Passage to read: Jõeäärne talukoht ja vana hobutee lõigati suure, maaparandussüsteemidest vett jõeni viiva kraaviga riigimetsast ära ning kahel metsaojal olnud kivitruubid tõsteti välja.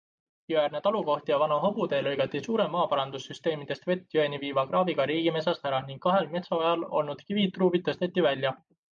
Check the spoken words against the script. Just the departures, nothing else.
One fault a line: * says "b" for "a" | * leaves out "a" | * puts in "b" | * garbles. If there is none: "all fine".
all fine